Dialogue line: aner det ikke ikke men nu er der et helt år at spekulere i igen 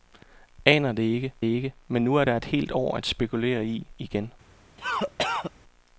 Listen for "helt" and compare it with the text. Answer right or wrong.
right